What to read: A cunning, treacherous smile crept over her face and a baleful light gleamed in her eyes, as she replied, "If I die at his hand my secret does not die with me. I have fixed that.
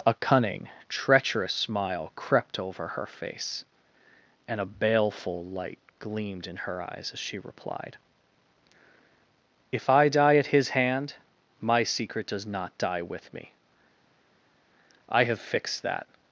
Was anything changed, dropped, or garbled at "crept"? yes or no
no